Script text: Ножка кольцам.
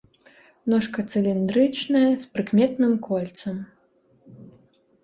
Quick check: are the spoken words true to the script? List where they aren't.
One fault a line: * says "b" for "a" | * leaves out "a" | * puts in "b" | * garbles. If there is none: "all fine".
* puts in "цыліндрычная з прыкметным"